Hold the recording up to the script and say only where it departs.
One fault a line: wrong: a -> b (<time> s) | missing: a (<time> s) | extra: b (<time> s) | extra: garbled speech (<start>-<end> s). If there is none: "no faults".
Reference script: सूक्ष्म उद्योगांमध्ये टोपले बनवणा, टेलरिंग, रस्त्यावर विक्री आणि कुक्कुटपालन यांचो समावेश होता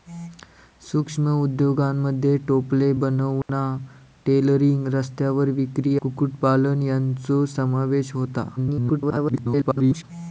missing: आणि (6.0 s)
extra: garbled speech (8.6-10.0 s)